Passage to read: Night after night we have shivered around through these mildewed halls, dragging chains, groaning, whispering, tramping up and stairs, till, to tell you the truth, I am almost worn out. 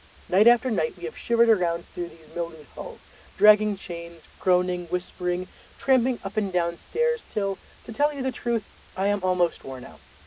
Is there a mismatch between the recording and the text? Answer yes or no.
yes